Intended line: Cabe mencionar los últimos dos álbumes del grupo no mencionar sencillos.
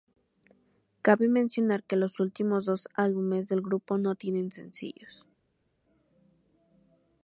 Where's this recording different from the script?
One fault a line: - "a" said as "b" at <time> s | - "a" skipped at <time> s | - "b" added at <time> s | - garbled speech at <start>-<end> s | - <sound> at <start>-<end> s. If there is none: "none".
- "que" added at 1.8 s
- "mencionar" said as "tienen" at 4.1 s